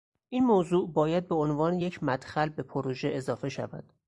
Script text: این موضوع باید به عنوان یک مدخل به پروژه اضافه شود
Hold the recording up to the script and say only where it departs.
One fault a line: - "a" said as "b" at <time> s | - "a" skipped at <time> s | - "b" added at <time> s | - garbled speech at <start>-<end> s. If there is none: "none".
none